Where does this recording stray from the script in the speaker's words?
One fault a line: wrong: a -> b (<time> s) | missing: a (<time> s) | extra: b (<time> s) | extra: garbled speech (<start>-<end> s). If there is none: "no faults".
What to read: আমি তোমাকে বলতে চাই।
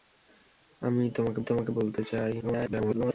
extra: তোমাকে (1.4 s)
extra: garbled speech (2.4-3.1 s)